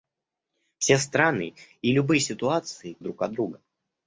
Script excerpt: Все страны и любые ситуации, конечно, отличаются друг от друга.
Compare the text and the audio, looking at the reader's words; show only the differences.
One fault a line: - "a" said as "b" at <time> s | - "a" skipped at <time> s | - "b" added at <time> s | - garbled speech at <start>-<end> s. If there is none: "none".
- "конечно отличаются" skipped at 3.0 s